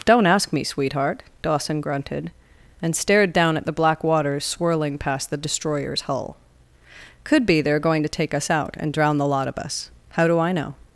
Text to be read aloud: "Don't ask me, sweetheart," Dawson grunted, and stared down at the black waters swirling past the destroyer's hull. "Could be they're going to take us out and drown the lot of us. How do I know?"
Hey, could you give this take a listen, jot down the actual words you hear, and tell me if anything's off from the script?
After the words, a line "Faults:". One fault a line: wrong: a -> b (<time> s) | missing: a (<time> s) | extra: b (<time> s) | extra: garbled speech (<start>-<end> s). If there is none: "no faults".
"Don't ask me, sweetheart," Dawson grunted, and stared down at the black waters swirling past the destroyer's hull. "Could be they're going to take us out and drown the lot of us. How do I know?"
Faults:
no faults